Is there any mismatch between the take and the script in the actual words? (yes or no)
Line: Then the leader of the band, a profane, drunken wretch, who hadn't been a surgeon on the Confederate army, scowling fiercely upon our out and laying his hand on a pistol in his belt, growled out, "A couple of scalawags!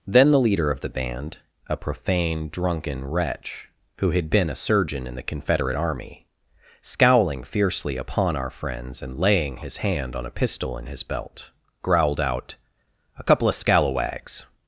yes